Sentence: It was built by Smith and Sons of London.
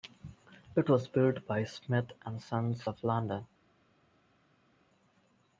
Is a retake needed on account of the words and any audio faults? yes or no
no